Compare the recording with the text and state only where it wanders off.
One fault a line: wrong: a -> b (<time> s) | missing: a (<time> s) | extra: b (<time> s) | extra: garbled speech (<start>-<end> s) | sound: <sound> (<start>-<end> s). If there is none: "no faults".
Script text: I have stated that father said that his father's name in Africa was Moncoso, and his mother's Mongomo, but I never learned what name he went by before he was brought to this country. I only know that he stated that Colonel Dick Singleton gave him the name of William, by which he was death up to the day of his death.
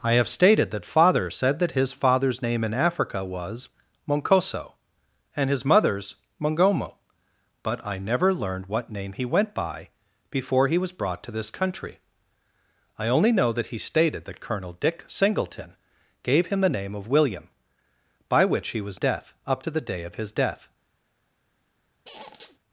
sound: squeak (22.0-22.6 s)